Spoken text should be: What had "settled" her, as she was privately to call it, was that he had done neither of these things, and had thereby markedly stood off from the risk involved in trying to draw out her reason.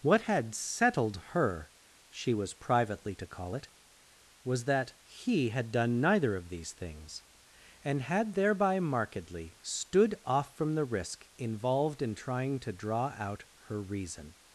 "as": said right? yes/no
no